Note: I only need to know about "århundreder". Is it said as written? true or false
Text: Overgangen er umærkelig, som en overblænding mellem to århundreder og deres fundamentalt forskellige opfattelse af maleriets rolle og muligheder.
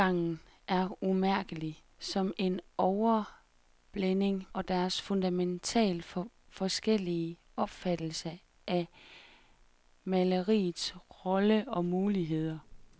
false